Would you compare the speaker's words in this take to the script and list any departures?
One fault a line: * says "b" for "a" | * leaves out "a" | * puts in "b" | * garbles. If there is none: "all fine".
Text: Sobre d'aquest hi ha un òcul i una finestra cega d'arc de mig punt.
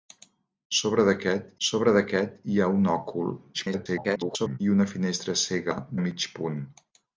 * puts in "sobre d'aquest"
* garbles
* leaves out "d'arc"